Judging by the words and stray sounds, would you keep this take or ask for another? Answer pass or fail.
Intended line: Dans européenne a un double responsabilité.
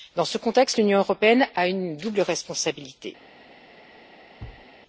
fail